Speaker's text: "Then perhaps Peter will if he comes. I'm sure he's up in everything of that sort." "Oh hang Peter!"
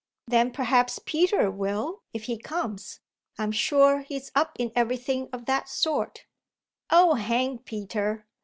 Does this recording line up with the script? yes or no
yes